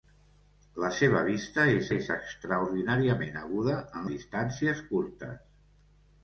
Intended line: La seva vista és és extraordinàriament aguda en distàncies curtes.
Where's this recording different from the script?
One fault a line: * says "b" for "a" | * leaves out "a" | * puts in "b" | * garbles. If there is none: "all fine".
all fine